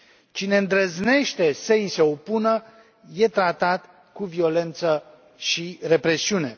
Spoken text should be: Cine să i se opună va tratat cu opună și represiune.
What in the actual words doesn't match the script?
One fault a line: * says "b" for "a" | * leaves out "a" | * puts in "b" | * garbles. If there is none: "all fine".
* puts in "îndrăznește"
* says "este" for "va"
* says "violență" for "opună"